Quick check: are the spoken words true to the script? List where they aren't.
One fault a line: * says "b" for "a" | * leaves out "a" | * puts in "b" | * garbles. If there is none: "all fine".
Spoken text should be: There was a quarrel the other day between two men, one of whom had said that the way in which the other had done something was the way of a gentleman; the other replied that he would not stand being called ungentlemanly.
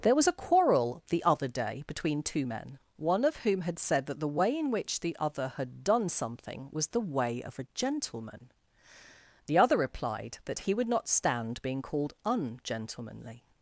all fine